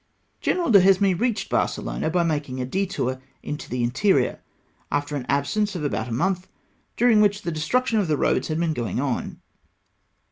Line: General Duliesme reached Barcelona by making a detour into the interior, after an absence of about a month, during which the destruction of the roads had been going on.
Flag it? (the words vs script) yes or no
no